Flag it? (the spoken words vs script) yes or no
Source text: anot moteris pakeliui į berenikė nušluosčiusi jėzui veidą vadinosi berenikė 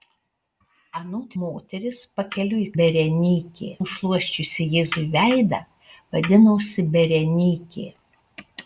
no